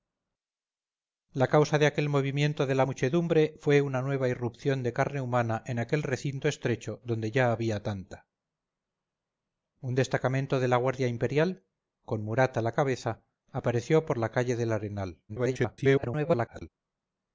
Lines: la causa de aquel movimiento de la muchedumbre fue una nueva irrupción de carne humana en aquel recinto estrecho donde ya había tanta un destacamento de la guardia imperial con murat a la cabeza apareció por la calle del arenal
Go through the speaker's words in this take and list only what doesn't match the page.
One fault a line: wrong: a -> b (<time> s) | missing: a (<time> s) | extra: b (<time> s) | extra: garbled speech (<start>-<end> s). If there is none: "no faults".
extra: garbled speech (15.3-16.7 s)